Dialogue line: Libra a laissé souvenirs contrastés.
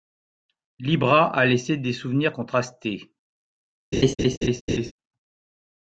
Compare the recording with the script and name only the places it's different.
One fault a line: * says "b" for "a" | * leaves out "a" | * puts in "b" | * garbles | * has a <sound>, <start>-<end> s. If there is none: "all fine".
* puts in "des"
* has a laugh, 3.9-4.9 s